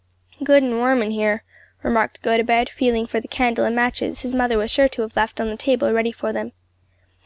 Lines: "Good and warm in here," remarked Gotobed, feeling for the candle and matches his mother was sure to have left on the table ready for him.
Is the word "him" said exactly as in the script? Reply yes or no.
no